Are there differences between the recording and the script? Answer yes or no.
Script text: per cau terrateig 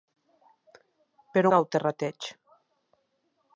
no